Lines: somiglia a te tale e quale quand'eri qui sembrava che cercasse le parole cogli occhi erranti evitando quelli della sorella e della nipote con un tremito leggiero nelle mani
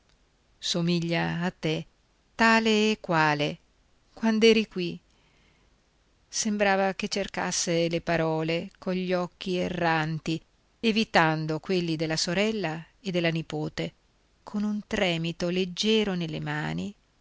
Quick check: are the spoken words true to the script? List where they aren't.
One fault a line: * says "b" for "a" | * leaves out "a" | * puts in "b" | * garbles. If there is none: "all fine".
all fine